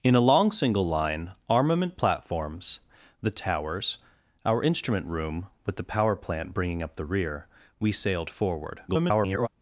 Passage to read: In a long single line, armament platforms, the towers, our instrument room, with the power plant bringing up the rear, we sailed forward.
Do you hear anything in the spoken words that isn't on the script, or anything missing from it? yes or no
yes